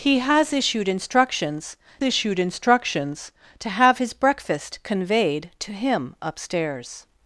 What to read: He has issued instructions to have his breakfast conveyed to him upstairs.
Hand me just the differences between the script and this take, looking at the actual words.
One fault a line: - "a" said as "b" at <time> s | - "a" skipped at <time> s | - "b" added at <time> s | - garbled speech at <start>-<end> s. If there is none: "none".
- "issued instructions" added at 2.0 s